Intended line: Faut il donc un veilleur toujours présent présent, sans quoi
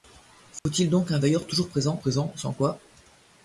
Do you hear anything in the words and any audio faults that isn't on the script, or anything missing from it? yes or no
yes